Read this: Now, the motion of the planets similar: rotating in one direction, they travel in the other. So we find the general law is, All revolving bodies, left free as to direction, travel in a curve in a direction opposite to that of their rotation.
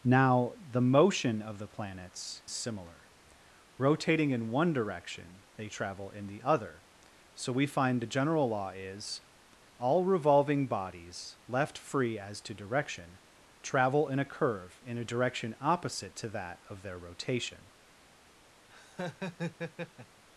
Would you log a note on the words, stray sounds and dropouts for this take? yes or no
yes